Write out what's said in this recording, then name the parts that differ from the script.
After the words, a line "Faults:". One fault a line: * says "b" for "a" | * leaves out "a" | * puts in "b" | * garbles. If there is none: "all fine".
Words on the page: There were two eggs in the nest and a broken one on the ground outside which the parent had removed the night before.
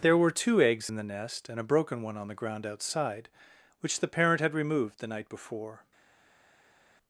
There were two eggs in the nest and a broken one on the ground outside which the parent had removed the night before.
Faults:
all fine